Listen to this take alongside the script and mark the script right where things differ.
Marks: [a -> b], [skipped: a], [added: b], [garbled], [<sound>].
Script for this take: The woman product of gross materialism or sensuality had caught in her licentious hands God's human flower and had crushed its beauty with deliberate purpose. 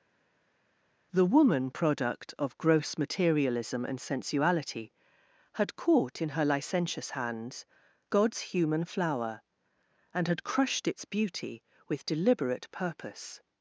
The woman product of gross materialism [or -> and] sensuality had caught in her licentious hands God's human flower and had crushed its beauty with deliberate purpose.